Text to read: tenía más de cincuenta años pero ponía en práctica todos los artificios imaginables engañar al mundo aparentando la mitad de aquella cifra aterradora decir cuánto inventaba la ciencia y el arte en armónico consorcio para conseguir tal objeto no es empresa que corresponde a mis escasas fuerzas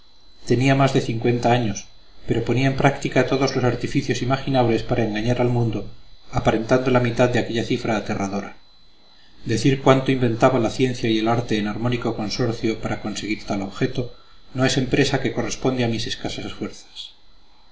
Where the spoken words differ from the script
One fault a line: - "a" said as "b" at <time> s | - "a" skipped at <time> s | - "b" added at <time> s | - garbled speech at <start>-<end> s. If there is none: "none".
- "para" added at 4.8 s